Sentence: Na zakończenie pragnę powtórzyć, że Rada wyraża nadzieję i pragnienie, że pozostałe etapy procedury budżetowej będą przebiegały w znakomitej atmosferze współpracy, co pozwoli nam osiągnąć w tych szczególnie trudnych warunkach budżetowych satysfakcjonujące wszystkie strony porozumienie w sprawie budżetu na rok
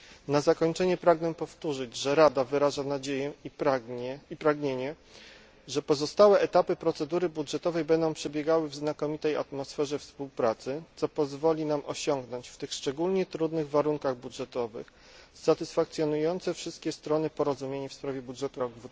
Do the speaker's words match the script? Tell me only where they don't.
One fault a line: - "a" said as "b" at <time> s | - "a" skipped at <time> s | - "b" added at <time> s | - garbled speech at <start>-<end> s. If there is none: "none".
- "na" skipped at 18.6 s